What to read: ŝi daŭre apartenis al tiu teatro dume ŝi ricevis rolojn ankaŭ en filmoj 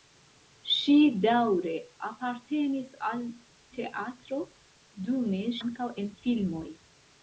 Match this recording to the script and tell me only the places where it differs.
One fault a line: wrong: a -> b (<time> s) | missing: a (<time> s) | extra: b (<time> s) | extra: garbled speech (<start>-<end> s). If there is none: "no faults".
missing: tiu (3.2 s)
missing: ŝi ricevis rolojn (5.4 s)